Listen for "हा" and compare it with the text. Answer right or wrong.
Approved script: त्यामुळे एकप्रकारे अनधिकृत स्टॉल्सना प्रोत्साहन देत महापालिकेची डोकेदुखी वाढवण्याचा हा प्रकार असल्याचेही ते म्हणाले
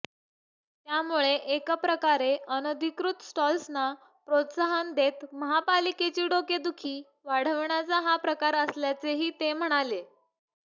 right